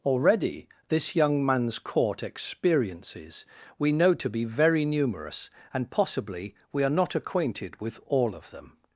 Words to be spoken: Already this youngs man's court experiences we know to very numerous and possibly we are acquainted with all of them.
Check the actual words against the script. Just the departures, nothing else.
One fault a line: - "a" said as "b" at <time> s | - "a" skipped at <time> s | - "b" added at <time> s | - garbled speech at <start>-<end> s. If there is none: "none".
- "youngs" said as "young" at 1.1 s
- "be" added at 4.3 s
- "not" added at 6.9 s